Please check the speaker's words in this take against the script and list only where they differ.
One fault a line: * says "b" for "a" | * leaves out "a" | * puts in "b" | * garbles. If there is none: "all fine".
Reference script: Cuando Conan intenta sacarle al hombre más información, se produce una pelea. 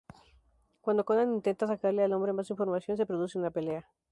all fine